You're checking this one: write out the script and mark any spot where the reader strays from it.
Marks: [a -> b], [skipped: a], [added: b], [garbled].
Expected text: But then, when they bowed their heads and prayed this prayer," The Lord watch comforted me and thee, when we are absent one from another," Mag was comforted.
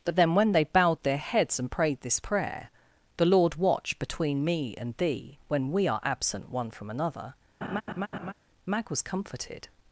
But then, when they bowed their heads and prayed this prayer," The Lord watch [comforted -> between] me and thee, when we are absent one from another," Mag was comforted.